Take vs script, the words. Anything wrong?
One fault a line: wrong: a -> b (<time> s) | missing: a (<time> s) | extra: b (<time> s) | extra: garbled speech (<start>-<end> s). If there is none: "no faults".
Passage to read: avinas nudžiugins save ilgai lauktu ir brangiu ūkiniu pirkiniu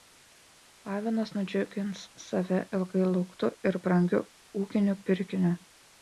no faults